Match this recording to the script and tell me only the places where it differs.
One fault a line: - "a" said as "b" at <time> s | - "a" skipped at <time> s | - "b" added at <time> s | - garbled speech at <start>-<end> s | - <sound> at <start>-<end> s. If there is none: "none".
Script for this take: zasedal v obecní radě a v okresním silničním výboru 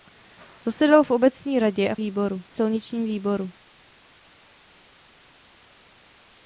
- "okresním" said as "výboru" at 1.9 s